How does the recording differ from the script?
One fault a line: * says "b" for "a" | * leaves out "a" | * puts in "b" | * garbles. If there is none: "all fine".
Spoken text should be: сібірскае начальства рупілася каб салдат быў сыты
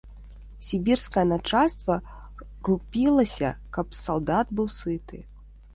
all fine